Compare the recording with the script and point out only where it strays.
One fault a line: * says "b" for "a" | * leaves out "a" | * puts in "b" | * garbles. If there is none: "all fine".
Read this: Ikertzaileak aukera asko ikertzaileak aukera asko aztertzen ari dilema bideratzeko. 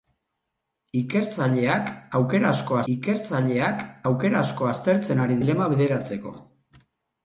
all fine